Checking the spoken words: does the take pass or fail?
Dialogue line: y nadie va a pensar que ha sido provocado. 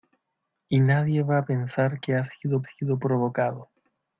fail